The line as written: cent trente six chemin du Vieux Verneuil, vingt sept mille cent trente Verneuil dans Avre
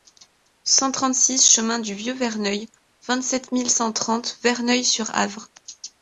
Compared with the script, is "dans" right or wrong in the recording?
wrong